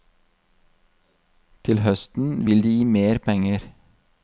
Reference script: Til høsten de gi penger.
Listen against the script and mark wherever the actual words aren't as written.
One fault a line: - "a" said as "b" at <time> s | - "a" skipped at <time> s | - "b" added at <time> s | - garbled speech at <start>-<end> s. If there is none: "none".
- "vil" added at 2.5 s
- "mer" added at 2.9 s